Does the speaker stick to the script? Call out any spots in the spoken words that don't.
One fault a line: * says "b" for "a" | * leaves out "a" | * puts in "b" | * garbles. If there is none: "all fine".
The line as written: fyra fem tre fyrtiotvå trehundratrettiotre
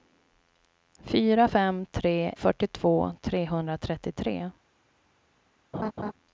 all fine